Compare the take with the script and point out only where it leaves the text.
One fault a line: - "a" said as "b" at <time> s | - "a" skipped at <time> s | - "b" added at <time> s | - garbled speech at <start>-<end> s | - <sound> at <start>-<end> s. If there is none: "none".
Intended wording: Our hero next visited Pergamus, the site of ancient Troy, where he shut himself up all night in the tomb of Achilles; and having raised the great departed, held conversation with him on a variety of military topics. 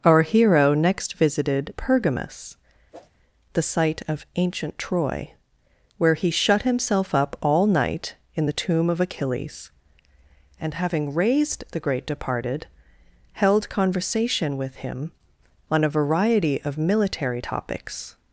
- whoosh at 2.9-3.1 s